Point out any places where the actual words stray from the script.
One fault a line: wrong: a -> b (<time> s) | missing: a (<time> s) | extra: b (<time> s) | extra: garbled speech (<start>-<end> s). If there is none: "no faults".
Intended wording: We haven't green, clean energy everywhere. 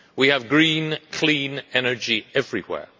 wrong: haven't -> have (0.3 s)